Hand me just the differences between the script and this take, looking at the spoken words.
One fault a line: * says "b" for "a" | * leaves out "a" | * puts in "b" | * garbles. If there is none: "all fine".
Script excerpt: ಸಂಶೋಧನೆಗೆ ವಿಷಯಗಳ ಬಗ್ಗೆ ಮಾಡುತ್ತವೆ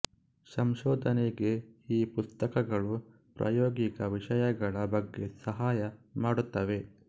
* puts in "ಈ ಪುಸ್ತಕಗಳು ಪ್ರಾಯೋಗಿಕ"
* puts in "ಸಹಾಯ"